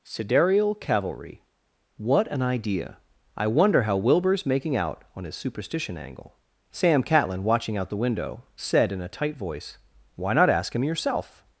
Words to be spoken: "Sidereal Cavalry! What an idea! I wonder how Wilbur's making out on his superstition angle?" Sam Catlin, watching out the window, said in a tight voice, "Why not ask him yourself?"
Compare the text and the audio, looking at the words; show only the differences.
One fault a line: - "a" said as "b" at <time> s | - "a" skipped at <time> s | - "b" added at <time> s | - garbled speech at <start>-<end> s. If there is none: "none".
none